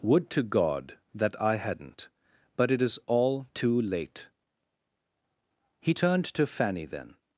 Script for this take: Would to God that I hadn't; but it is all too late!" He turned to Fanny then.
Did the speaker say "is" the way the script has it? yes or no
yes